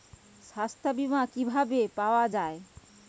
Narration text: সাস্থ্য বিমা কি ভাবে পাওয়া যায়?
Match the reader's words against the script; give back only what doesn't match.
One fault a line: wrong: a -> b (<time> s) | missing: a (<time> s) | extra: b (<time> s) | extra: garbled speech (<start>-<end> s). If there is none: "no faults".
no faults